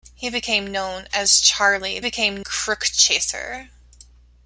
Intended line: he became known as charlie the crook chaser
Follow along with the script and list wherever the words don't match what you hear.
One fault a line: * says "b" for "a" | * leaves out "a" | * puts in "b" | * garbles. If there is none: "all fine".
* says "became" for "the"